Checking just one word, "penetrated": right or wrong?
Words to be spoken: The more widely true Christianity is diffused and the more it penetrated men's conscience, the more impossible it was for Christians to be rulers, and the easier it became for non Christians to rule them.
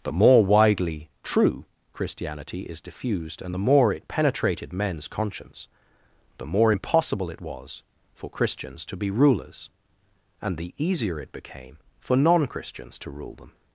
right